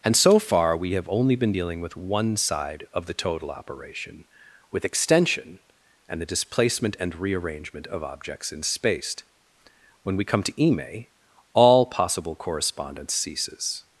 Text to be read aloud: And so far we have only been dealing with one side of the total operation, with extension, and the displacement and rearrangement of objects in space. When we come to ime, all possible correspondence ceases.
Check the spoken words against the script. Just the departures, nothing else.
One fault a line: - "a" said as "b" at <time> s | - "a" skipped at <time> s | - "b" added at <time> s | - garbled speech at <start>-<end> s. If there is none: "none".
none